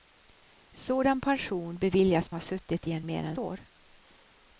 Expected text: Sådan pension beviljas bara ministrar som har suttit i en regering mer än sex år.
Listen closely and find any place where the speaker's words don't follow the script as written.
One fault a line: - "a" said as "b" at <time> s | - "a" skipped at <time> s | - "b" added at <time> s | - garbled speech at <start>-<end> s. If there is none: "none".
- "bara ministrar som" skipped at 2.3 s
- "regering" skipped at 3.0 s
- "sex" skipped at 3.4 s